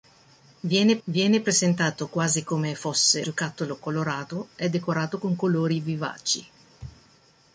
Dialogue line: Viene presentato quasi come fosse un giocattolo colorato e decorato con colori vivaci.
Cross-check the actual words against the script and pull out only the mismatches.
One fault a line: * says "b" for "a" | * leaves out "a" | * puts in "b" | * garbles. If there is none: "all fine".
* puts in "viene"
* leaves out "un"